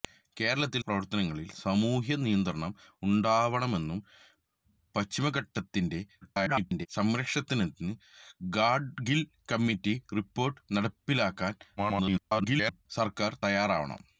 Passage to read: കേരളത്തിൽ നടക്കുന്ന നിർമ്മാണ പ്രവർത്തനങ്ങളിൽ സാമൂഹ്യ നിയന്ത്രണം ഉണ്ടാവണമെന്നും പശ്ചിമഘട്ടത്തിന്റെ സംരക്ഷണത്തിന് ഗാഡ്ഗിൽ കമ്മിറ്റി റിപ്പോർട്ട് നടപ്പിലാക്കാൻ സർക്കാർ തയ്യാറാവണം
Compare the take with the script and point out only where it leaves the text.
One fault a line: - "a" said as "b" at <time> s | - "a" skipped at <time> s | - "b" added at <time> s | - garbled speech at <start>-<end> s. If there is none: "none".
- "നടക്കുന്ന നിർമ്മാണ" skipped at 0.8 s
- garbled speech at 6.2-6.9 s
- garbled speech at 11.8-12.9 s